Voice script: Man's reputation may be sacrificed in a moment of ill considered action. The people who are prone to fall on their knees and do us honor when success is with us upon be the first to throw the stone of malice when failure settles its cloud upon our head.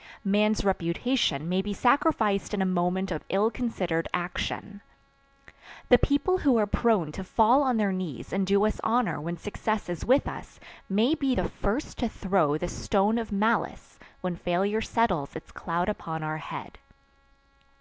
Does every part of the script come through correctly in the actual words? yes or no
no